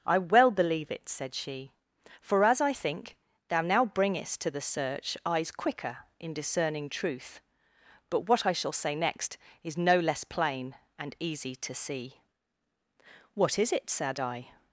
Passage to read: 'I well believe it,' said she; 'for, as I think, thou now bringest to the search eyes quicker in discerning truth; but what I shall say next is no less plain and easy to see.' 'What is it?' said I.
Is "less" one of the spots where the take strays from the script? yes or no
no